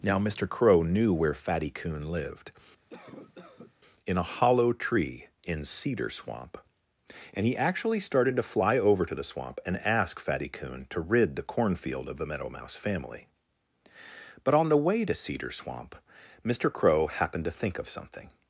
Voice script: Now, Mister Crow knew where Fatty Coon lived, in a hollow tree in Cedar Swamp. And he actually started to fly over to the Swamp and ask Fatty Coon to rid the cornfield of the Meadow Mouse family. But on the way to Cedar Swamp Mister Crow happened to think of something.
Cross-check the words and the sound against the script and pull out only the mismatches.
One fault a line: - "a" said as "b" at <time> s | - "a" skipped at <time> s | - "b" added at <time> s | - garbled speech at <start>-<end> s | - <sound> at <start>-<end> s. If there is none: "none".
- cough at 2.9-3.7 s